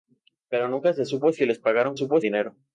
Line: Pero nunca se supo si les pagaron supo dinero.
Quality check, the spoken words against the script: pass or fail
pass